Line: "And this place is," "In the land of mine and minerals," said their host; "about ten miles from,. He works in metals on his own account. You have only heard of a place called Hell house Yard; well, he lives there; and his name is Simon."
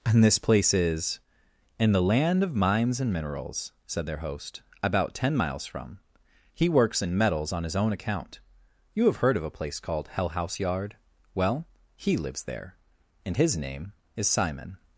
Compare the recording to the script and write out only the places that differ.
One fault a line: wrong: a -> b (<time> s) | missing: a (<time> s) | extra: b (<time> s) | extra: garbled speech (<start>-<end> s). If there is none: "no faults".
wrong: mine -> mines (2.5 s)
missing: only (9.2 s)